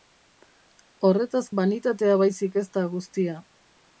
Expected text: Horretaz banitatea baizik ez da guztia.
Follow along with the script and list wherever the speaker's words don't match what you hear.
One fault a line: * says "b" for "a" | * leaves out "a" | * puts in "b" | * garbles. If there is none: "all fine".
all fine